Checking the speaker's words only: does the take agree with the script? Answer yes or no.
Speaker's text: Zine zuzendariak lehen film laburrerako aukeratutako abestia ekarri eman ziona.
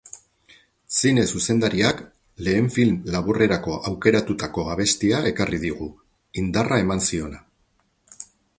no